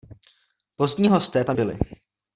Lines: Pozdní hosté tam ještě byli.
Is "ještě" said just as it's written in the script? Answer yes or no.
no